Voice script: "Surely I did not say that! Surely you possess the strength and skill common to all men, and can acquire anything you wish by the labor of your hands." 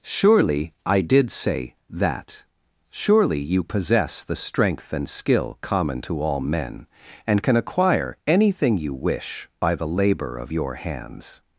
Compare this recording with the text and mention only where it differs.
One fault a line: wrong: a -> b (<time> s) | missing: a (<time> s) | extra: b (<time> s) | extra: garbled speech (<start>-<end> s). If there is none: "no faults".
missing: not (1.3 s)